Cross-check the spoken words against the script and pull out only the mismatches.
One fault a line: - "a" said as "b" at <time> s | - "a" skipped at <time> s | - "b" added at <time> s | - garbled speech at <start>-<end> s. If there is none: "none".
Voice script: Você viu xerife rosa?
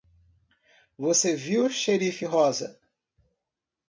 none